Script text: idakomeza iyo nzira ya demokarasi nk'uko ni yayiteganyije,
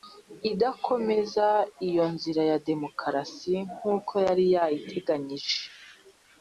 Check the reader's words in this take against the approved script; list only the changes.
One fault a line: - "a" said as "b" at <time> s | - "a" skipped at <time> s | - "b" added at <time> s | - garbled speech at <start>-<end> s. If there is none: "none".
- "ni" said as "yari" at 4.3 s